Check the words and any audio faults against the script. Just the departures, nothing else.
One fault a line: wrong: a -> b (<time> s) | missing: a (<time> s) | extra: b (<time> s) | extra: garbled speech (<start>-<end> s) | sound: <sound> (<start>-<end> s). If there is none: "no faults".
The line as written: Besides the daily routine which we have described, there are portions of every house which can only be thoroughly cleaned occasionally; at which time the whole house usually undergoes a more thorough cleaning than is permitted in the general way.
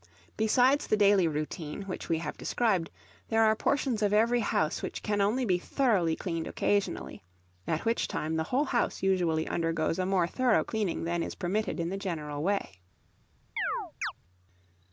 sound: chirp (13.6-14.1 s)